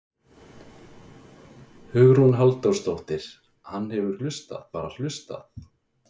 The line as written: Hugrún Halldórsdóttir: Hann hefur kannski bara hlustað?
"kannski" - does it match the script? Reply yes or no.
no